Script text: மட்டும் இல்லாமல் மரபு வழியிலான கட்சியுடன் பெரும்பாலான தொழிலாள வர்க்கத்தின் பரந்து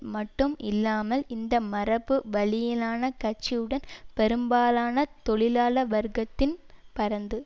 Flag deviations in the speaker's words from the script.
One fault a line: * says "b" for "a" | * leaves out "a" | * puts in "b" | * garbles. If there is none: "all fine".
* puts in "இந்த"